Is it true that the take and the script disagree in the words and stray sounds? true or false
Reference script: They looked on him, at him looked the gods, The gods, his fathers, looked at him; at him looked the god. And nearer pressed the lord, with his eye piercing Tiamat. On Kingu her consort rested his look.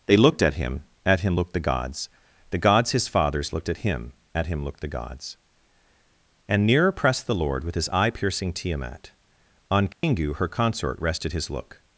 true